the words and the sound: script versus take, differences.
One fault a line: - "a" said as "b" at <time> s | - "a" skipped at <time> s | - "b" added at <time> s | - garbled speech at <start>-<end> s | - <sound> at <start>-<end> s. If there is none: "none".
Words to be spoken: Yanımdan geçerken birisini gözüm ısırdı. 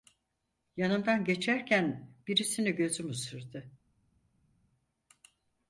none